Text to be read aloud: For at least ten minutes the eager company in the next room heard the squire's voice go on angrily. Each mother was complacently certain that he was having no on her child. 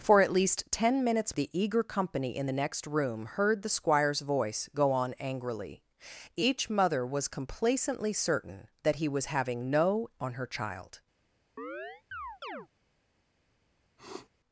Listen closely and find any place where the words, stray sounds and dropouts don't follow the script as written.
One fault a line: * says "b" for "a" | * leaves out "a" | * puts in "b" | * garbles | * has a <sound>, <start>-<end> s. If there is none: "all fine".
* has a chirp, 11.6-12.7 s
* has a sniff, 14.0-14.3 s